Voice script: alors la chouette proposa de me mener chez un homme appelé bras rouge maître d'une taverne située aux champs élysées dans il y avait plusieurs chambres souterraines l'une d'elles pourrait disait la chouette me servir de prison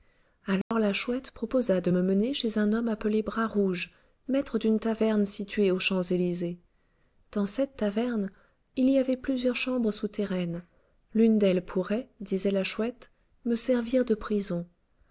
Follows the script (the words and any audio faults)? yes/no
no